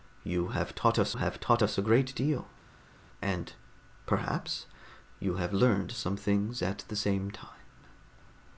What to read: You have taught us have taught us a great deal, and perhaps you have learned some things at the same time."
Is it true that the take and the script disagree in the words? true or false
false